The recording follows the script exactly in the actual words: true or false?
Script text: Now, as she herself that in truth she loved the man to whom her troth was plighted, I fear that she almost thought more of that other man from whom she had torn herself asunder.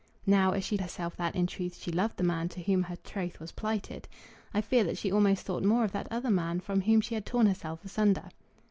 true